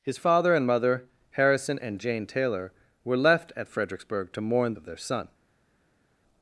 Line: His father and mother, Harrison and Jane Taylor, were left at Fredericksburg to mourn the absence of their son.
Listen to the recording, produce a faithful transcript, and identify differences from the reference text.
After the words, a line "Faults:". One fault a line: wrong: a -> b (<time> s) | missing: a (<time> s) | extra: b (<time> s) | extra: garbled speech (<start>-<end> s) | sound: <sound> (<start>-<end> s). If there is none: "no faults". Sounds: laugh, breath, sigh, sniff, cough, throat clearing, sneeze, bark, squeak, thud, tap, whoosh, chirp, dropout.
His father and mother, Harrison and Jane Taylor, were left at Fredericksburg to mourn of their son.
Faults:
missing: the absence (4.7 s)